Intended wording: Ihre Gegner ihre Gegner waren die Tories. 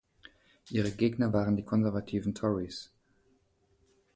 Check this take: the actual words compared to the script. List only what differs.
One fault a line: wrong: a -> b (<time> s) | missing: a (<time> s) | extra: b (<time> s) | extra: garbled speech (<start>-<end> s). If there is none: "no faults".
missing: ihre Gegner (1.4 s)
extra: konservativen (1.6 s)